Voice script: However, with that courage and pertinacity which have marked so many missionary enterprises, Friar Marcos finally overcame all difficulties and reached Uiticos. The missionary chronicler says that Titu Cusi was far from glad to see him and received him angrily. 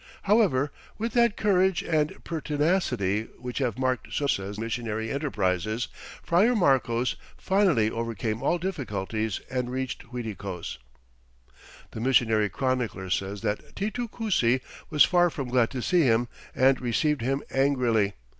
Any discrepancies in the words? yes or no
yes